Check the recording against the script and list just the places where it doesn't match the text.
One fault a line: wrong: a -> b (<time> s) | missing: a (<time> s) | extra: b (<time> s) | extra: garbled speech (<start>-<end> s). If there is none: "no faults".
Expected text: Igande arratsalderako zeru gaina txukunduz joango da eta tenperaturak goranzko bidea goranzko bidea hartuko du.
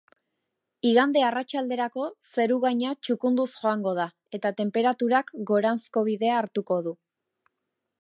missing: goranzko bidea (6.4 s)